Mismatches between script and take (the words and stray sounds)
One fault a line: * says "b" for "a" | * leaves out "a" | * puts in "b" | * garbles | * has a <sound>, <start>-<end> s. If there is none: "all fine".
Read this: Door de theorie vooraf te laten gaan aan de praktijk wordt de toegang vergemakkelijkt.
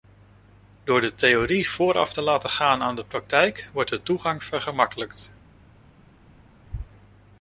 all fine